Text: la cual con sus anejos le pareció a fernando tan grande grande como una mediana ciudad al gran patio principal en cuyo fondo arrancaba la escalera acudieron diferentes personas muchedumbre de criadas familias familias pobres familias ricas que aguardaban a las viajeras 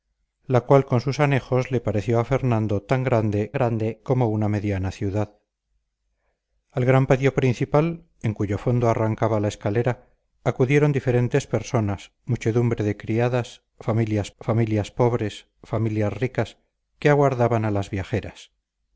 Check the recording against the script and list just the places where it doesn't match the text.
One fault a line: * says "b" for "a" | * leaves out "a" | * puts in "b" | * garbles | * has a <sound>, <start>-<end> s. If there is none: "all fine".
all fine